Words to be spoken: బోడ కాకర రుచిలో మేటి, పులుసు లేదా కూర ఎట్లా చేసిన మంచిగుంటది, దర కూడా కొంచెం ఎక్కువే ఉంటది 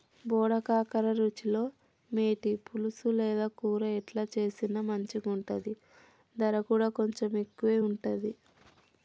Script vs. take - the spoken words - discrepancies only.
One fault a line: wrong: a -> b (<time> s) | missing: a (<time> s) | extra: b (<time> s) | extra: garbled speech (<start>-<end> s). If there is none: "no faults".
no faults